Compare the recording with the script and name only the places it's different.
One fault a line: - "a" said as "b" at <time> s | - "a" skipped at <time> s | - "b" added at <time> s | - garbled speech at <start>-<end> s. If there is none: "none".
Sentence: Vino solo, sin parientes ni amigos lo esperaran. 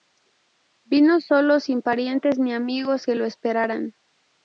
- "que" added at 3.0 s